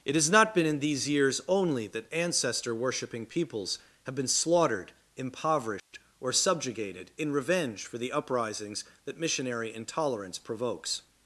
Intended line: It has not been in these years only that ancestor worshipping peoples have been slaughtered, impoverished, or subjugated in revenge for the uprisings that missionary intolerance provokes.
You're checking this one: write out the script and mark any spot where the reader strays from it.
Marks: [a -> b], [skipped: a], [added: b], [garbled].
It has not been in these years only that ancestor worshipping peoples have been slaughtered, impoverished, or subjugated in revenge for the uprisings that missionary intolerance provokes.